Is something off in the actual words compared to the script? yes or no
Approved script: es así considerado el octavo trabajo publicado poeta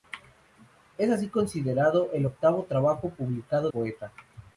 no